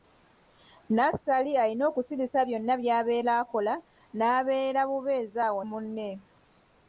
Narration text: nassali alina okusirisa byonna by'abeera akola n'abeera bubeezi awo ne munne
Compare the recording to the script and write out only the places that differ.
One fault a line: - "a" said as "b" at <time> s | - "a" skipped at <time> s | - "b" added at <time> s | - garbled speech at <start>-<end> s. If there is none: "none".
- "ne" skipped at 5.6 s